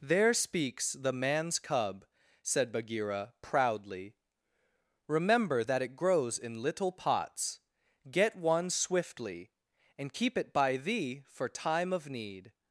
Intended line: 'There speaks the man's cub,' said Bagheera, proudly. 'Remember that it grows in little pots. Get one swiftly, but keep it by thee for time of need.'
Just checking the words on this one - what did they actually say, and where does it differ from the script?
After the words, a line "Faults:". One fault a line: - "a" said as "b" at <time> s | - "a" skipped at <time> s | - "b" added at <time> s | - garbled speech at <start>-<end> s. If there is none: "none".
'There speaks the man's cub,' said Bagheera, proudly. 'Remember that it grows in little pots. Get one swiftly, and keep it by thee for time of need.'
Faults:
- "but" said as "and" at 10.0 s